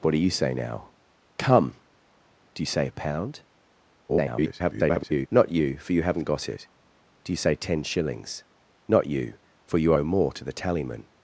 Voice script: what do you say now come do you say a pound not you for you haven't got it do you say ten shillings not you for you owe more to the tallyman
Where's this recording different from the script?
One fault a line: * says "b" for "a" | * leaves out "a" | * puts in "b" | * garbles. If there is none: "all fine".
* garbles